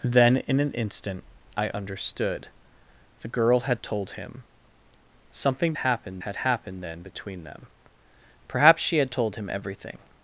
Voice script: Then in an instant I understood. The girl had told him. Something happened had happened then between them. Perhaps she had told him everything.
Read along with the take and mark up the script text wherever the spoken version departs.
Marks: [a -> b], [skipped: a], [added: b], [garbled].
Then in an instant I understood. The girl had told him. Something happened had happened then between them. Perhaps she had told him everything.